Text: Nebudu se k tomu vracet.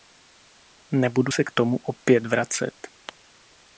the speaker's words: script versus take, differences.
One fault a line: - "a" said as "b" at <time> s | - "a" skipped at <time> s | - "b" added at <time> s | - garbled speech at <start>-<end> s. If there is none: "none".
- "opět" added at 1.8 s